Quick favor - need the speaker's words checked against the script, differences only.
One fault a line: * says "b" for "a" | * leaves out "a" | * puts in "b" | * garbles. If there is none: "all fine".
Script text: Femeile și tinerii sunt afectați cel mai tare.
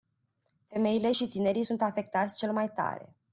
all fine